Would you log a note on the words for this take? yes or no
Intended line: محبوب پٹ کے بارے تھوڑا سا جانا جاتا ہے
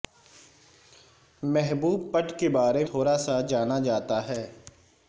no